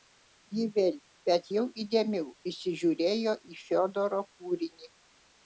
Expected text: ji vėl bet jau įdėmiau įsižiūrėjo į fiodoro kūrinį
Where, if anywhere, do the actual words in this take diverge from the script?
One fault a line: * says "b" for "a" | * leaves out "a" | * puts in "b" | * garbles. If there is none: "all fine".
all fine